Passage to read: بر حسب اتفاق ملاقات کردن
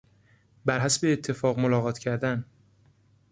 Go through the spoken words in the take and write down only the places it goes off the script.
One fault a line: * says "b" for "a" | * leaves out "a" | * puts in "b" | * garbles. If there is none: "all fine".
all fine